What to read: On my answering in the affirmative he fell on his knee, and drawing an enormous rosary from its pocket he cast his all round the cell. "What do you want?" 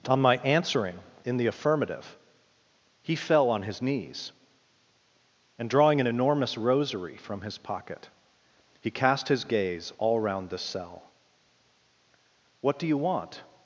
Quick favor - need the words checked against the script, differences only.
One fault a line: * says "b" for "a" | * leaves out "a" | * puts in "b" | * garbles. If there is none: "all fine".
* says "knees" for "knee"
* says "his" for "its"
* puts in "gaze"